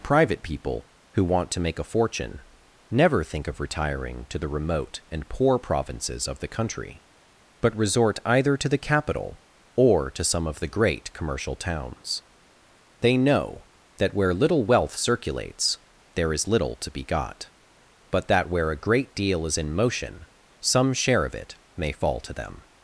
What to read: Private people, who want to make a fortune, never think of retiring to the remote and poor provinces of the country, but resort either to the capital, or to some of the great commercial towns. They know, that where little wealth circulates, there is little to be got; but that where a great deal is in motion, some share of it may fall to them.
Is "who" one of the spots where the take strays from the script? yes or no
no